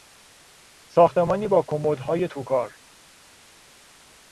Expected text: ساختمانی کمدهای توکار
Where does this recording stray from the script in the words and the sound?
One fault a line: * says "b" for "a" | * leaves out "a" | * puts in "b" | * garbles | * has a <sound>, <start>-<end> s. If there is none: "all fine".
* puts in "با"